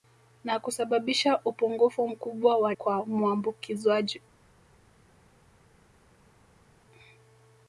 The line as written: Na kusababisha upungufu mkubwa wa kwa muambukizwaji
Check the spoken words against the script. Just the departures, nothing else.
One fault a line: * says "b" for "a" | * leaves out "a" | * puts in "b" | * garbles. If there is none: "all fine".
all fine